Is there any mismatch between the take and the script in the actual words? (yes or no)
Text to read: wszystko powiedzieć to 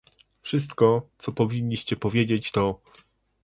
yes